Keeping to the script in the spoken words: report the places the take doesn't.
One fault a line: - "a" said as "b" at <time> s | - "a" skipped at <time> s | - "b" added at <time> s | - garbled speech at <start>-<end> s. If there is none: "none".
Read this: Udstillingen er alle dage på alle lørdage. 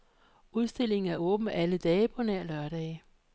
- "åben" added at 1.1 s
- "alle" said as "nær" at 2.2 s